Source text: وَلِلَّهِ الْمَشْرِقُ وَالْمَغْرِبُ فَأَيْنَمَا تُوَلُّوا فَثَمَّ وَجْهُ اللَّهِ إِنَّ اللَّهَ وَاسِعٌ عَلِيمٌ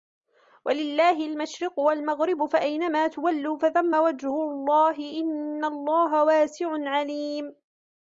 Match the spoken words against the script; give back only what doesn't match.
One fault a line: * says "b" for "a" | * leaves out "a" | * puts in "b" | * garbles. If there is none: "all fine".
all fine